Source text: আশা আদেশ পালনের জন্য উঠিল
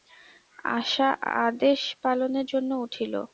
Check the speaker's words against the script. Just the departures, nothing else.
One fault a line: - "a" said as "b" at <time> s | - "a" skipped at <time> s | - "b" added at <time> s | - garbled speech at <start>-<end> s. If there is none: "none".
none